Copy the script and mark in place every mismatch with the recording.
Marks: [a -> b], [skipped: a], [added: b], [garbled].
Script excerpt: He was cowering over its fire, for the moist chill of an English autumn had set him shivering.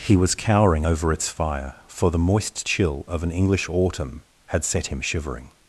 He was cowering over its fire, for the moist chill of an English autumn had set him shivering.